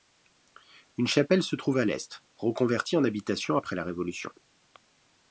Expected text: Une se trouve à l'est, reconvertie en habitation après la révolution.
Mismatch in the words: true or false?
true